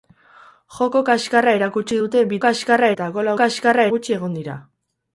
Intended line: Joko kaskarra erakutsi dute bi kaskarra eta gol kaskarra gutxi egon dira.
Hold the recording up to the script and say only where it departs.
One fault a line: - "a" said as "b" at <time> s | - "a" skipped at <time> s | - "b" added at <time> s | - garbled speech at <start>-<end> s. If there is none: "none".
none